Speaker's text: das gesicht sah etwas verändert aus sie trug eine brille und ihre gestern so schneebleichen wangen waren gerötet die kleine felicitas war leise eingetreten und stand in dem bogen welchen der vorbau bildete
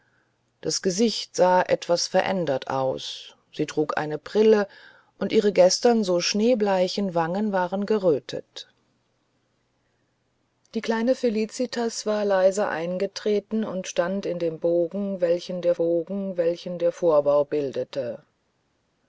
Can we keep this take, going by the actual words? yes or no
no